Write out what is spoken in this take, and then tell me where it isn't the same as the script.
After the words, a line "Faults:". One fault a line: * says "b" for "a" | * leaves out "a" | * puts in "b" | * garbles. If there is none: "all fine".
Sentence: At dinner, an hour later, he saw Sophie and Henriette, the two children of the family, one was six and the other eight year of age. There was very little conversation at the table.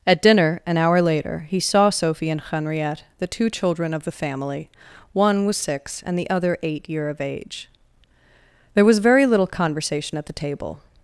At dinner, an hour later, he saw Sophie and Henriette, the two children of the family, one was six and the other eight year of age. There was very little conversation at the table.
Faults:
all fine